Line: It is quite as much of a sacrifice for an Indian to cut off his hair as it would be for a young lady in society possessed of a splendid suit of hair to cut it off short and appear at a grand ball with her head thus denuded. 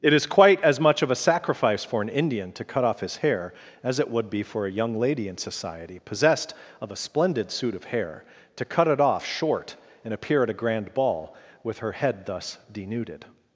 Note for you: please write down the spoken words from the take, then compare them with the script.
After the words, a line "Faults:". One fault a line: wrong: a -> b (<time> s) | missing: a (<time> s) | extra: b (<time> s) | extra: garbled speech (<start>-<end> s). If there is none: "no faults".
It is quite as much of a sacrifice for an Indian to cut off his hair as it would be for a young lady in society possessed of a splendid suit of hair to cut it off short and appear at a grand ball with her head thus denuded.
Faults:
no faults